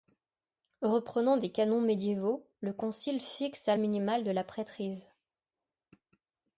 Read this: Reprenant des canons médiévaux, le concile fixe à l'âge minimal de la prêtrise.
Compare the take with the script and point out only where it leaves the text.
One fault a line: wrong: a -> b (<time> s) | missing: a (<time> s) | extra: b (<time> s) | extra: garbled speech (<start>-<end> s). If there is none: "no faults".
missing: l'âge (3.8 s)